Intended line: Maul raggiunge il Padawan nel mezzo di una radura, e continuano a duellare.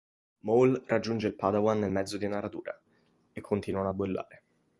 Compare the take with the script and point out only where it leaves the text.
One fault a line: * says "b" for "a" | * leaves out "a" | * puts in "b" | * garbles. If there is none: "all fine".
all fine